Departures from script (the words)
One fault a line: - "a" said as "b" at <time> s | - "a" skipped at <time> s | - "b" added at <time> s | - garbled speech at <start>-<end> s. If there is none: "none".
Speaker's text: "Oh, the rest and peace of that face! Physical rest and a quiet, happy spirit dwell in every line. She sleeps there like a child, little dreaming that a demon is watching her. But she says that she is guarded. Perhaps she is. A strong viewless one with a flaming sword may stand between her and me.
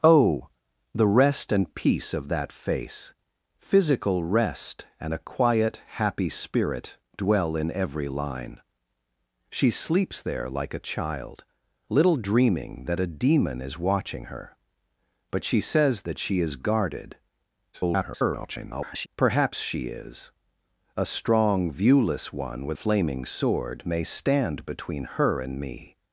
- garbled speech at 17.7-19.1 s
- "a" skipped at 22.8 s